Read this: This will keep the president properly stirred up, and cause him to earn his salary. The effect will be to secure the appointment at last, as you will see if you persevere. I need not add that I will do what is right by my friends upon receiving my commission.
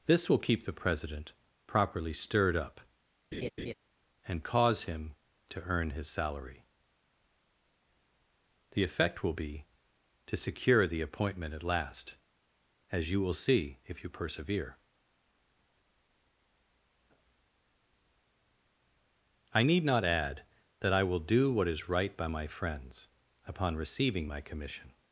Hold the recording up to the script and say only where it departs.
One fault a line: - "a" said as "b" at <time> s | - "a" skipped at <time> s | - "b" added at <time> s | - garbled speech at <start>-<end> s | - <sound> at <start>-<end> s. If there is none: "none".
- laugh at 3.3-3.7 s